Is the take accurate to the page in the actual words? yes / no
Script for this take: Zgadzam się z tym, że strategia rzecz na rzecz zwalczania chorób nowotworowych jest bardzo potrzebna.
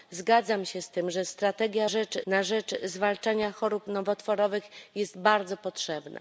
yes